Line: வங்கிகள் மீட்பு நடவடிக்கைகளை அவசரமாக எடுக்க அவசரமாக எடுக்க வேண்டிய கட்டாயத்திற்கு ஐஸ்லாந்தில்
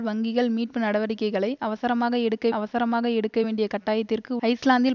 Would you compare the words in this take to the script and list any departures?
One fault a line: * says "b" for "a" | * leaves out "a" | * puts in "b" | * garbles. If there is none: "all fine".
all fine